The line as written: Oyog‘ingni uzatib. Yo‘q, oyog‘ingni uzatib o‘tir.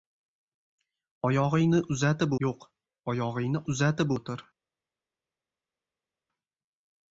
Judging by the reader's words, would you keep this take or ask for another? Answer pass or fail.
pass